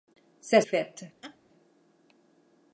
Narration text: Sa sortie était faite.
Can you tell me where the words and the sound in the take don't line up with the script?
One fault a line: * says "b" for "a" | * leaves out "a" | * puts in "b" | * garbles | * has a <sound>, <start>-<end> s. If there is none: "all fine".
* leaves out "sortie était"
* has a laugh, 1.2-1.4 s